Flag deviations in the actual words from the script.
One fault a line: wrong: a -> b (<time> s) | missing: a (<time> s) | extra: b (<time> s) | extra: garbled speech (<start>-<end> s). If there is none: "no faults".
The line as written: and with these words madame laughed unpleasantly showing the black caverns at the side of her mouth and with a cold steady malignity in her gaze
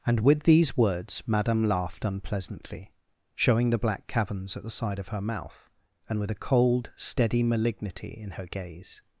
no faults